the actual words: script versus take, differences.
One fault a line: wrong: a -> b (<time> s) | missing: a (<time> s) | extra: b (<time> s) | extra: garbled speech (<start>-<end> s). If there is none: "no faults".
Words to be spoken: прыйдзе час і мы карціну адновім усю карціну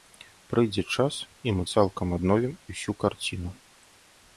wrong: карціну -> цалкам (1.7 s)